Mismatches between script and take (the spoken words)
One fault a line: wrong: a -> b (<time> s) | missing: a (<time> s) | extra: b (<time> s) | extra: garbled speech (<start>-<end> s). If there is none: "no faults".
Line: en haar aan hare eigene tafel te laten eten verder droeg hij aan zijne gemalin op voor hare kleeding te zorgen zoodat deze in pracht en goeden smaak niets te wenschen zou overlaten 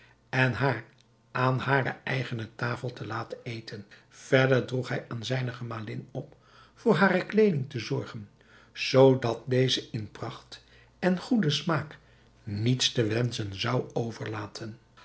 no faults